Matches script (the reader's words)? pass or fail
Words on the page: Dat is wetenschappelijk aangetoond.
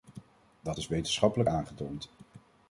pass